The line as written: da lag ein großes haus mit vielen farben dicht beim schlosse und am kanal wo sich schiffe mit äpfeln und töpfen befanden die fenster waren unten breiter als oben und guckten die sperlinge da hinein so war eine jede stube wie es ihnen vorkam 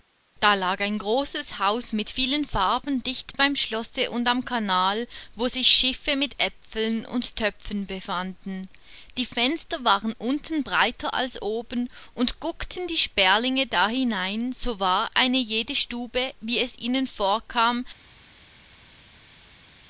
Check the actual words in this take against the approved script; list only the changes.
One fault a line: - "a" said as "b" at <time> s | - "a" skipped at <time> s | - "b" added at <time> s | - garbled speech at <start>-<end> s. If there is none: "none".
none